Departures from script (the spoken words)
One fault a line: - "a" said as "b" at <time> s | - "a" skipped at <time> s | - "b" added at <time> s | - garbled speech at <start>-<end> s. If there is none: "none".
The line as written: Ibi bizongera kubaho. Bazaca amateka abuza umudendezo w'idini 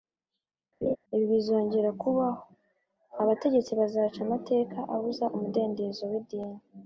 - "Abategetsi" added at 3.2 s